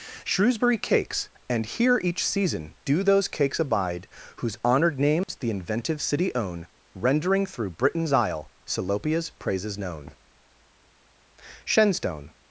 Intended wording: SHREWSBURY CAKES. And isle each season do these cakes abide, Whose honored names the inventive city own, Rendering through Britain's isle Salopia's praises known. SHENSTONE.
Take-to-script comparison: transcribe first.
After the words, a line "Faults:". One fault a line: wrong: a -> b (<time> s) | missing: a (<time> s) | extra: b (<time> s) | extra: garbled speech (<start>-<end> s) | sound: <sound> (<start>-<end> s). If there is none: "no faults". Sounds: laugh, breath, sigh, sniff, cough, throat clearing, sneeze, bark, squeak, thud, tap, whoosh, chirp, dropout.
SHREWSBURY CAKES. And here each season do those cakes abide, Whose honored names the inventive city own, Rendering through Britain's isle Salopia's praises known. SHENSTONE.
Faults:
wrong: isle -> here (1.6 s)
wrong: these -> those (3.0 s)
sound: dropout (5.2-5.3 s)